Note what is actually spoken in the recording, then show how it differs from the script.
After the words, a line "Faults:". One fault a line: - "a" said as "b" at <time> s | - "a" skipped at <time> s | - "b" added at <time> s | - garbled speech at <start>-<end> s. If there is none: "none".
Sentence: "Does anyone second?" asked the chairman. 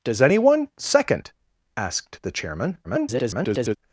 "Does anyone second?" asked the chairman. [garbled]
Faults:
- garbled speech at 2.8-3.8 s